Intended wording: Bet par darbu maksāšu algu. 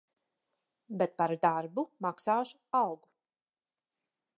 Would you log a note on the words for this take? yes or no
no